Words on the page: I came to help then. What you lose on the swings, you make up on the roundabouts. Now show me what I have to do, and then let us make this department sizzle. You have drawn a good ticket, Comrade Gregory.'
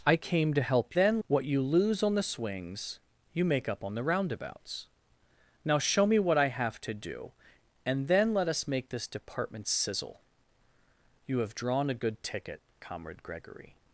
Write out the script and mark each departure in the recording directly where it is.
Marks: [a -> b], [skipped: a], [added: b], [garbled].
I came to help then. What you lose on the swings, you make up on the roundabouts. Now show me what I have to do, and then let us make this department sizzle. You have drawn a good ticket, Comrade Gregory.'